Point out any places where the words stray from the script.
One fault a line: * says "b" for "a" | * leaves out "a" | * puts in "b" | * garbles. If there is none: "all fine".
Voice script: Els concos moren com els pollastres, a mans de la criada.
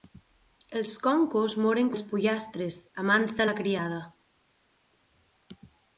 * leaves out "com"